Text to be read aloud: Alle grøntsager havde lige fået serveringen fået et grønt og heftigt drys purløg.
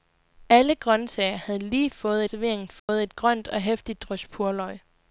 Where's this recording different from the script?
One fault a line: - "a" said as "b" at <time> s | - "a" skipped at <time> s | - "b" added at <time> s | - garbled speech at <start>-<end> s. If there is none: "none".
none